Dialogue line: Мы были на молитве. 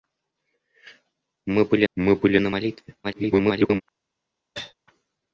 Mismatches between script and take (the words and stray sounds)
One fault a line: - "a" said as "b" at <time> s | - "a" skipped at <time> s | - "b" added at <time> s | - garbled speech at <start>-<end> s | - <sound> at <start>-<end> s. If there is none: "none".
- "мы были" added at 1.9 s
- garbled speech at 3.0-3.8 s
- cough at 4.5-4.7 s